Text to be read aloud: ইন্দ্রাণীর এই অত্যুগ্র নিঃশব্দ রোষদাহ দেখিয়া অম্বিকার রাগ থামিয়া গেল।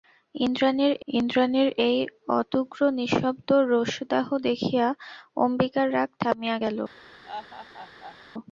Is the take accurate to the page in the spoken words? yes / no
no